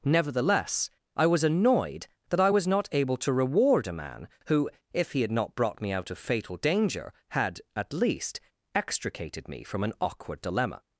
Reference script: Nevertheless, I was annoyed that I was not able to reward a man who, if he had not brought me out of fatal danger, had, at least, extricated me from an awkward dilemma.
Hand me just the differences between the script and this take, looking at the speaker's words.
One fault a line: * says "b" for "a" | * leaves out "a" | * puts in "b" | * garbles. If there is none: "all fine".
all fine